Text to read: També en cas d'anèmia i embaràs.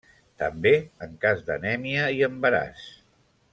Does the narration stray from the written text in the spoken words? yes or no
no